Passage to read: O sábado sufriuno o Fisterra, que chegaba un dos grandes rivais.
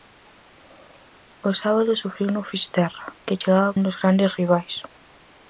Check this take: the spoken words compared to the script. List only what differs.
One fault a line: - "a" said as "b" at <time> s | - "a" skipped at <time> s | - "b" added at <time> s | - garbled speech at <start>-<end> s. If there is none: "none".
none